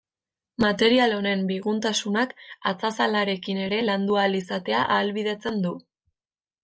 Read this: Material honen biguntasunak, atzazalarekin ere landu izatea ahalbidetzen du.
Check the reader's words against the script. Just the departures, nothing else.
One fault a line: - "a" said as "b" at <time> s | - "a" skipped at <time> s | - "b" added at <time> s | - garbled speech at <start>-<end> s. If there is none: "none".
- "ahal" added at 4.2 s